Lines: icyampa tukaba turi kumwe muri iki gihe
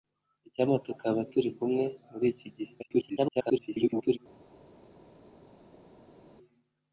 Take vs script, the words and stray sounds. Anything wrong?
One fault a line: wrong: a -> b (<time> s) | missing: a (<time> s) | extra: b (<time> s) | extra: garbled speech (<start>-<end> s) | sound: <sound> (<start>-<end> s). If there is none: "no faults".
extra: garbled speech (2.8-4.2 s)